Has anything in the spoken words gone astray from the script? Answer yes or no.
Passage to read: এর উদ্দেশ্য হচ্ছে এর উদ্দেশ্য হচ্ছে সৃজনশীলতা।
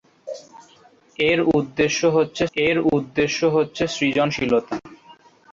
no